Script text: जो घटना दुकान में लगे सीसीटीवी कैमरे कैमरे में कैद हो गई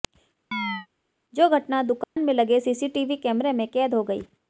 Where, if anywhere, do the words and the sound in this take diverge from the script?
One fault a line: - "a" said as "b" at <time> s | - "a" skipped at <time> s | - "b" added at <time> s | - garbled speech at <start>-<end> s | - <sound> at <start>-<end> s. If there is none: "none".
- chirp at 0.5-0.9 s
- dropout at 2.0-2.2 s
- "कैमरे" skipped at 3.5 s